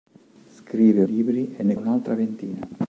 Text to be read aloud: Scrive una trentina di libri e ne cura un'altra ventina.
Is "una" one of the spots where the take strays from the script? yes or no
yes